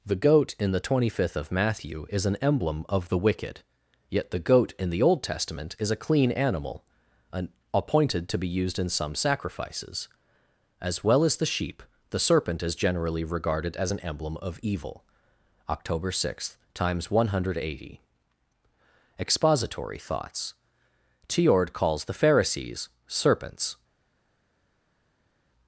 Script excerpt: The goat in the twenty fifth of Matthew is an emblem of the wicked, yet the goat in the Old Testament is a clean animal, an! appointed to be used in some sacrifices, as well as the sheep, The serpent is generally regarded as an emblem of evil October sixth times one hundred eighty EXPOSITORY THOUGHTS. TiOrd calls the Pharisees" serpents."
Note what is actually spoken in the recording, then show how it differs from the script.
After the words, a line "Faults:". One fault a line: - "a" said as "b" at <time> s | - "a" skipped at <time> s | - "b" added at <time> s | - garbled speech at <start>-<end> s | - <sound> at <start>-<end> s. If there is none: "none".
The goat in the twenty fifth of Matthew is an emblem of the wicked, yet the goat in the Old Testament is a clean animal, an! appointed to be used in some sacrifices, as well as the sheep, The serpent is generally regarded as an emblem of evil October sixth times one hundred eighty EXPOSITORY THOUGHTS. TiOrd calls the Pharisees" serpents."
Faults:
none